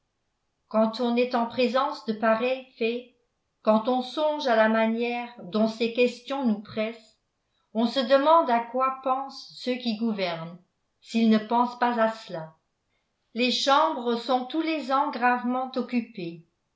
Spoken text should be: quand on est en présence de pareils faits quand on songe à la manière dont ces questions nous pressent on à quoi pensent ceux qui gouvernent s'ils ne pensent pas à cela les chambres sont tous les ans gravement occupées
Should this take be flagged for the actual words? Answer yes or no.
yes